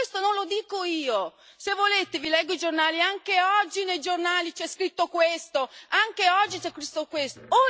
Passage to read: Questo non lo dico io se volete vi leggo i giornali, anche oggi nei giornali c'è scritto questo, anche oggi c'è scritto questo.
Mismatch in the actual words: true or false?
false